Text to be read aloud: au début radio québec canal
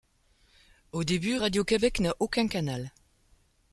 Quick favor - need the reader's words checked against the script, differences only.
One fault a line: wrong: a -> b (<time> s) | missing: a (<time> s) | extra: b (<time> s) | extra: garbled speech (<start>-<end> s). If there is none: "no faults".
extra: n'a aucun (2.0 s)